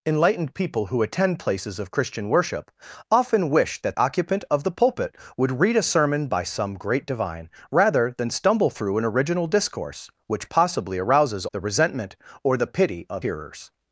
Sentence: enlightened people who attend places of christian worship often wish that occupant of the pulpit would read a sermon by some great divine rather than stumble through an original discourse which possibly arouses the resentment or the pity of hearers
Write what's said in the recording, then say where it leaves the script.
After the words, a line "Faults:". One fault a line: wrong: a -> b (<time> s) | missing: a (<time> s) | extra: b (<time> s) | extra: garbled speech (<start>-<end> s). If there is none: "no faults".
enlightened people who attend places of christian worship often wish that occupant of the pulpit would read a sermon by some great divine rather than stumble through an original discourse which possibly arouses the resentment or the pity of hearers
Faults:
no faults